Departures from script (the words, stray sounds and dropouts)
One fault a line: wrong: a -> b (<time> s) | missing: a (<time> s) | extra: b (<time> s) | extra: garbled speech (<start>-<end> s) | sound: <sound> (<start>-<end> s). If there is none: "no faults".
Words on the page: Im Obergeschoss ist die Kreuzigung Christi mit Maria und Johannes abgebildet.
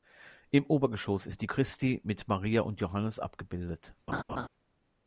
missing: Kreuzigung (1.5 s)
sound: laugh (4.1-4.5 s)